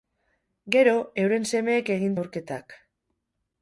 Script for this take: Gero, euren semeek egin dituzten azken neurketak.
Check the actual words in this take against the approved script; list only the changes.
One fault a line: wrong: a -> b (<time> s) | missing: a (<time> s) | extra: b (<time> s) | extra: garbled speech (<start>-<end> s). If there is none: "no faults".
missing: dituzten azken (2.2 s)